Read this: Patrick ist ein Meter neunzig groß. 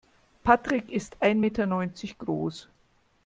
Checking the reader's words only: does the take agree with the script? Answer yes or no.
yes